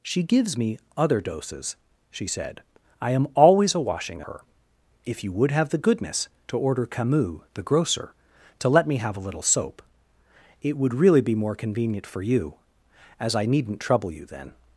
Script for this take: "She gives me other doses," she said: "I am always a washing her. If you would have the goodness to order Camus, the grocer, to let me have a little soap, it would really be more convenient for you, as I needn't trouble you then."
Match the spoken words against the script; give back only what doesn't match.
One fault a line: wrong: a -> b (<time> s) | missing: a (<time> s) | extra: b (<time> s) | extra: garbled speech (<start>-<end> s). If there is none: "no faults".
no faults